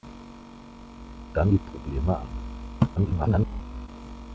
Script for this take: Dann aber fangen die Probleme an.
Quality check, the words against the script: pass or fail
fail